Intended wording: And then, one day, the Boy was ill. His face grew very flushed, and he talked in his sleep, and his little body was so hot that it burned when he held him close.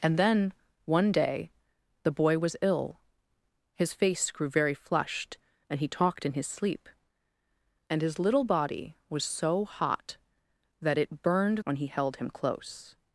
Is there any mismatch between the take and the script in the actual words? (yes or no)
no